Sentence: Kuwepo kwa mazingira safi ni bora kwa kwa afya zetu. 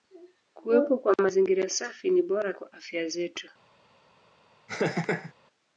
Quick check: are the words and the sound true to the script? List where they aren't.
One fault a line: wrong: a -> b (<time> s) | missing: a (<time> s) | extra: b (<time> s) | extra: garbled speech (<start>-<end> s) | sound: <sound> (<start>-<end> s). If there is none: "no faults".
missing: kwa (2.7 s)
sound: laugh (4.7-5.3 s)